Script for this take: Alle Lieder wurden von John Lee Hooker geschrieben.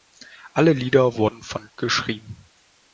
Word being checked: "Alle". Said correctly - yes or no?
yes